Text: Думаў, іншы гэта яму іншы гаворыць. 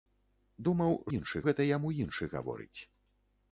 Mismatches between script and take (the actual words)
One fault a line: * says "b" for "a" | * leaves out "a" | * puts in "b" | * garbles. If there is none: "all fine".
all fine